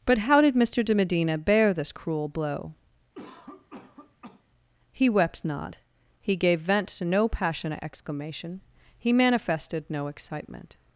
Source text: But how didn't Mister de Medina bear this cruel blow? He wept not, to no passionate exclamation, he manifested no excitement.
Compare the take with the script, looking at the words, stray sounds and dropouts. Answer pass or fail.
fail